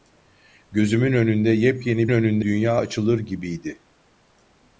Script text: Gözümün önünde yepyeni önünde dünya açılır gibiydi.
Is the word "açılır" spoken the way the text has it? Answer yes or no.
yes